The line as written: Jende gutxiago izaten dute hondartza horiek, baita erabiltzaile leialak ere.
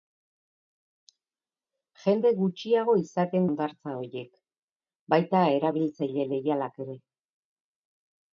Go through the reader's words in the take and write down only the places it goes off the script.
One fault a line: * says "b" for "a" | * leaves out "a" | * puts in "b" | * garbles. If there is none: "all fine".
* leaves out "dute"